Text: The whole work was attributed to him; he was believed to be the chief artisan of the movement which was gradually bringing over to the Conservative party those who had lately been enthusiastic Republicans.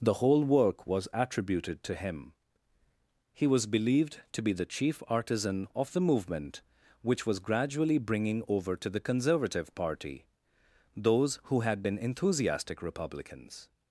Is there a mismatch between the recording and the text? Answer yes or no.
yes